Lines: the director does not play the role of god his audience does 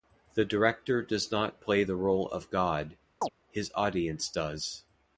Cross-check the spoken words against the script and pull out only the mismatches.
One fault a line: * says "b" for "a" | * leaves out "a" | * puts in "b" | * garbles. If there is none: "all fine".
all fine